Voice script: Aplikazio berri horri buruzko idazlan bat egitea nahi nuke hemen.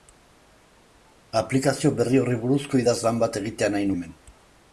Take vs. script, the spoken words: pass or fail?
fail